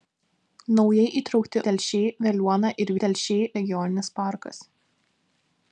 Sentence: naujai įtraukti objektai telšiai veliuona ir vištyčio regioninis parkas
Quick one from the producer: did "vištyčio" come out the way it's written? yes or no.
no